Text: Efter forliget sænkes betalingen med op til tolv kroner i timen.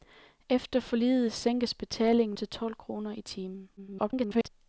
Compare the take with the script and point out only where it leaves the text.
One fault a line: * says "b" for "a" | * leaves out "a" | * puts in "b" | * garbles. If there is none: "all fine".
* leaves out "med op"
* garbles